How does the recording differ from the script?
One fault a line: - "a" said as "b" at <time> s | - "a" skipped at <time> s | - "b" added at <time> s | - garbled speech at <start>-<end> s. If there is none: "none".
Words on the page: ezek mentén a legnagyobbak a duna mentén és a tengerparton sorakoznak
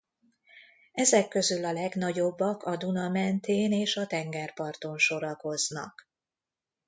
- "mentén" said as "közül" at 1.3 s